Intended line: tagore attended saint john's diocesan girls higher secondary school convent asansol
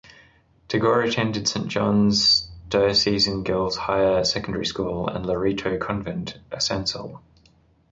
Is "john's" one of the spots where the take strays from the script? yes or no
no